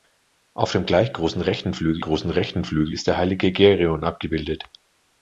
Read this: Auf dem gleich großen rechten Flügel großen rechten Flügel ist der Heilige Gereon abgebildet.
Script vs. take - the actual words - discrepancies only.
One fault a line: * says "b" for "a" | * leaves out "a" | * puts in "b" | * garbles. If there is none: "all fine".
all fine